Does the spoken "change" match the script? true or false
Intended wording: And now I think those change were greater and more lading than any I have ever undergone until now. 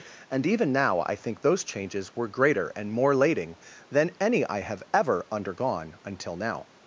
false